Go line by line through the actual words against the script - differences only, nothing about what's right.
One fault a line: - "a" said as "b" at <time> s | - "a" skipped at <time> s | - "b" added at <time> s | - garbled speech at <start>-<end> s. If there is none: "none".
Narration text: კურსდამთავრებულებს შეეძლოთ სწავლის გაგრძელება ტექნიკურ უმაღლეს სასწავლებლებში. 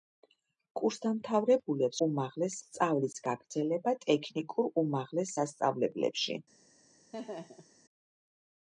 - "შეეძლოთ" said as "უმაღლეს" at 2.1 s